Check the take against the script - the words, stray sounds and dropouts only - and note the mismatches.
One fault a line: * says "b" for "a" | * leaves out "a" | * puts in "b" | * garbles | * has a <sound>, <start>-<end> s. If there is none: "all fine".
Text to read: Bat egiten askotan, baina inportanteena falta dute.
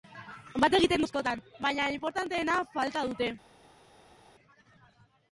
all fine